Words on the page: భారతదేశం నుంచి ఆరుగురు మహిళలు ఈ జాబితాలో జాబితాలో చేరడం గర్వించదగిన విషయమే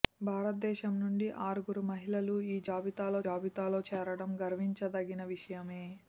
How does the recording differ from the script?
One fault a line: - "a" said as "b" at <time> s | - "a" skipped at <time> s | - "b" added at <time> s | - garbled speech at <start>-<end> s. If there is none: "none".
none